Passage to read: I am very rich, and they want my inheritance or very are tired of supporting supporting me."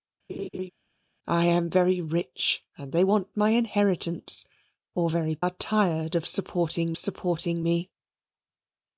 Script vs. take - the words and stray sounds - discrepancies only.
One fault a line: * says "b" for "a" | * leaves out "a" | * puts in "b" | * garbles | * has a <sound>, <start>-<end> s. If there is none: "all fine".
* has a laugh, 0.3-0.7 s